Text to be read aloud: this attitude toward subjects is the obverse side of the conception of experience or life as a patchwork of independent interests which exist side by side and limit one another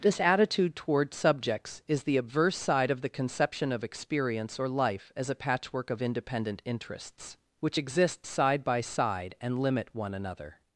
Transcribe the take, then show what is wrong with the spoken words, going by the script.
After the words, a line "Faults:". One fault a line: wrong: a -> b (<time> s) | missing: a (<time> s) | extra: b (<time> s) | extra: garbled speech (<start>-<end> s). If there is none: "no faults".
this attitude toward subjects is the obverse side of the conception of experience or life as a patchwork of independent interests which exist side by side and limit one another
Faults:
no faults